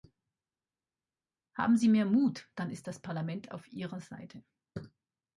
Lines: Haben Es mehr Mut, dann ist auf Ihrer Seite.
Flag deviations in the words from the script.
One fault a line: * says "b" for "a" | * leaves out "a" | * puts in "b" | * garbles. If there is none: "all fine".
* says "Sie" for "Es"
* puts in "das Parlament"